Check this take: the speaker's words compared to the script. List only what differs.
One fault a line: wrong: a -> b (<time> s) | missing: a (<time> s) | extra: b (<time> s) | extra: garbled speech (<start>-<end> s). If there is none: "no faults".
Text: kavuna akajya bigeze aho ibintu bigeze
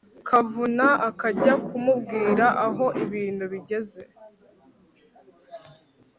wrong: bigeze -> kumubwira (1.7 s)